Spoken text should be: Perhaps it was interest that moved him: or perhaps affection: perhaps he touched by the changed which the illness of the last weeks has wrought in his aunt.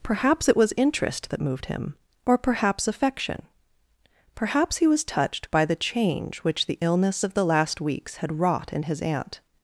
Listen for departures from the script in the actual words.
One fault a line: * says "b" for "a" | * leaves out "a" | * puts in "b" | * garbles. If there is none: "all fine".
* puts in "was"
* says "change" for "changed"
* says "had" for "has"